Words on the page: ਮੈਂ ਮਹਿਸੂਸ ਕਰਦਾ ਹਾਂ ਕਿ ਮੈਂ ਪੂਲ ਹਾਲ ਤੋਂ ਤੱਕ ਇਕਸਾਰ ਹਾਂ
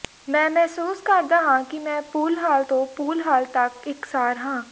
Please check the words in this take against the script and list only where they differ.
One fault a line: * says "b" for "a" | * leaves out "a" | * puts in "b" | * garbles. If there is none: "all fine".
* puts in "ਪੂਲ ਹਾਲ"